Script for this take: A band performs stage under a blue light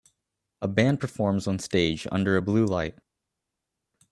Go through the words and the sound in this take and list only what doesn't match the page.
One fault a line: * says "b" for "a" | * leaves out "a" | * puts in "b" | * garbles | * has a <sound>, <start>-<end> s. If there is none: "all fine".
* puts in "on"